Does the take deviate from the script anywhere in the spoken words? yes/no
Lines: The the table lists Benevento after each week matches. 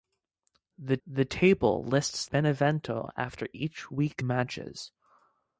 no